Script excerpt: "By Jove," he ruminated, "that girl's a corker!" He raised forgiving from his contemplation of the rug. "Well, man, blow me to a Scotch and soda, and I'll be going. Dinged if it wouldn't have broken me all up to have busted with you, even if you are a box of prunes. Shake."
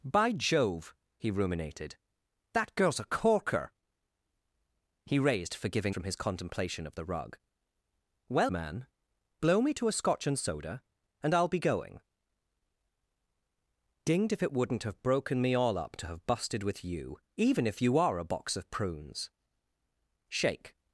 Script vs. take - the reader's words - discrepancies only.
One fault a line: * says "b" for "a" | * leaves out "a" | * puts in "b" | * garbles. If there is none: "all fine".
all fine